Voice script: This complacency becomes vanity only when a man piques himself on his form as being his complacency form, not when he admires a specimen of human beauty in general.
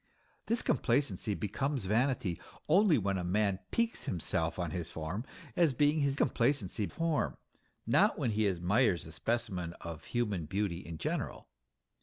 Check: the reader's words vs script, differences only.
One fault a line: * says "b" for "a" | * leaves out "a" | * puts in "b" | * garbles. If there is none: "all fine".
all fine